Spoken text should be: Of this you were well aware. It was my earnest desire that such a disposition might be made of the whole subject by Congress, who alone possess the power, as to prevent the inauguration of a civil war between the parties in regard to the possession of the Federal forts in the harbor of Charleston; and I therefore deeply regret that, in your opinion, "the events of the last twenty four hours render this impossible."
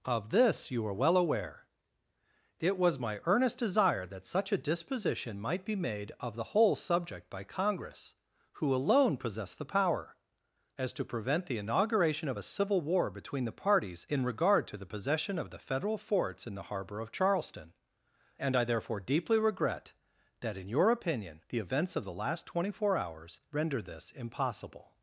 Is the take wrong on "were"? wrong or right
wrong